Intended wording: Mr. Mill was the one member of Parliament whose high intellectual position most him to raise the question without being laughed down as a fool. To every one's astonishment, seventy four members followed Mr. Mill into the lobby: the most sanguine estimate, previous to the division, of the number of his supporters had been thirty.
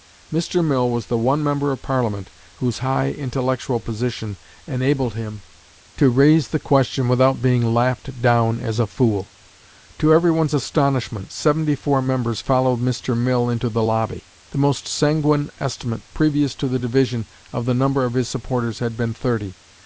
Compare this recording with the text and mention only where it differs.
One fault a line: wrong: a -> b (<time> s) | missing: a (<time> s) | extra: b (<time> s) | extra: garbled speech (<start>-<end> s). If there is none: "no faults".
wrong: most -> enabled (4.7 s)